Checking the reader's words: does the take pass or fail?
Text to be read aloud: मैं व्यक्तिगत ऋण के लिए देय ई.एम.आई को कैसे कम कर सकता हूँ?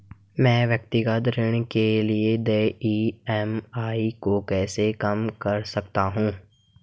pass